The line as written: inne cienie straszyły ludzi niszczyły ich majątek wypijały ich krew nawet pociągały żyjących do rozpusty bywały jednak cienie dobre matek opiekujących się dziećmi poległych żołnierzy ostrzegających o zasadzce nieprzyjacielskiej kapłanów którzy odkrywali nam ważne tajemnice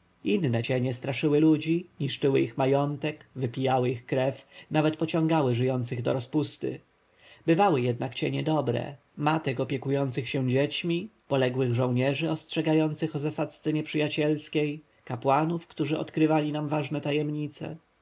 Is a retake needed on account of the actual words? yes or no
no